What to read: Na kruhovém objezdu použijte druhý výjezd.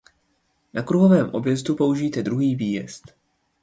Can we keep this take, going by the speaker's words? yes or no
yes